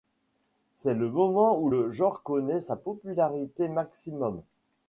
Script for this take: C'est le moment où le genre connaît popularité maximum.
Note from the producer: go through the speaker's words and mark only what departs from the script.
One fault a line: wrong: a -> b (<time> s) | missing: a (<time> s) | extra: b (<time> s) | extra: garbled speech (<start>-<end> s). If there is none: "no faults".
extra: sa (2.6 s)